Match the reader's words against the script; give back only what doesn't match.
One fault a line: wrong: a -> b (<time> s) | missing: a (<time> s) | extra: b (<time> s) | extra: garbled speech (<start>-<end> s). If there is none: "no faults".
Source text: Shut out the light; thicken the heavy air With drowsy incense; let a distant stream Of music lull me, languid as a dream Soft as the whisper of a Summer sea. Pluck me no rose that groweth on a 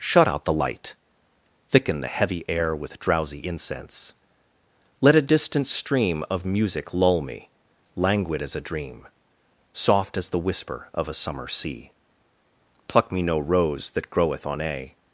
no faults